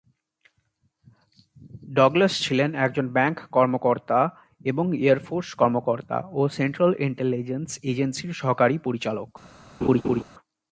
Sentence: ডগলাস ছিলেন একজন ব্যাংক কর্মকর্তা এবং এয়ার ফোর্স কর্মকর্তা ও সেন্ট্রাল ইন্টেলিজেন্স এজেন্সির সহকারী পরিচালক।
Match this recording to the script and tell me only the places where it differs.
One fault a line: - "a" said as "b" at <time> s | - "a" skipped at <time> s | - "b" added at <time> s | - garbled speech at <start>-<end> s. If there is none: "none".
none